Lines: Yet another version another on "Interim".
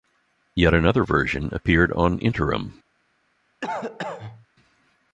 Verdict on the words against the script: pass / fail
fail